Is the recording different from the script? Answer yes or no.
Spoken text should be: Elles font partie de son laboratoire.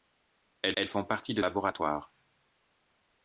yes